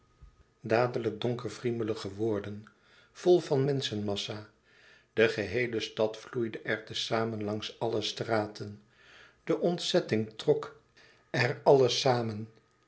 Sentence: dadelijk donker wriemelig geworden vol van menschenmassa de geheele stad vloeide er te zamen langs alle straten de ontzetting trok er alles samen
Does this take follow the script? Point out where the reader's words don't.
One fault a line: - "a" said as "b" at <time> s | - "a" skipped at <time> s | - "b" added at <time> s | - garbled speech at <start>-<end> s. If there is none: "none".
none